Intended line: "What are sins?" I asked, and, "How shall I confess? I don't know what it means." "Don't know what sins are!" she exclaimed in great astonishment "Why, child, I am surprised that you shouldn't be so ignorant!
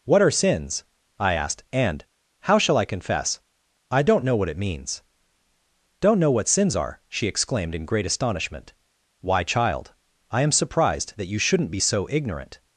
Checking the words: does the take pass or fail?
pass